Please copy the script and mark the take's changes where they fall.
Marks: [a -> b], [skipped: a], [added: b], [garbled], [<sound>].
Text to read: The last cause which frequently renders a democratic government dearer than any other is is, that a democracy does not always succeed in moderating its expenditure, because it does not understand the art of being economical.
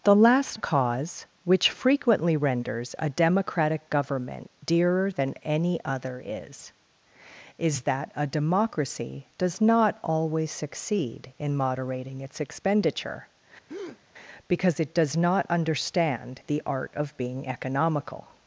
The last cause which frequently renders a democratic government dearer than any other is is, that a democracy does not always succeed in moderating its expenditure, [breath] because it does not understand the art of being economical.